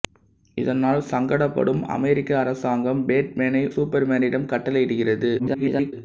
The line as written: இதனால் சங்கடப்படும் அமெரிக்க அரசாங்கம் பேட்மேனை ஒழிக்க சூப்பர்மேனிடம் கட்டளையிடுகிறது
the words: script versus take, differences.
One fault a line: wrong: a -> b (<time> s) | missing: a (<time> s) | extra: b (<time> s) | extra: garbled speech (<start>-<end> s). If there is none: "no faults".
missing: ஒழிக்க (3.6 s)
extra: garbled speech (5.4-5.9 s)